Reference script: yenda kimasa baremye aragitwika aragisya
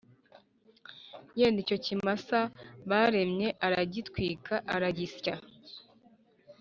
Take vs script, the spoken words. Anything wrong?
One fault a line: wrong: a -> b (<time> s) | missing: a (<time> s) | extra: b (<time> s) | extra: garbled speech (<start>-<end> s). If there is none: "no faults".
extra: icyo (1.6 s)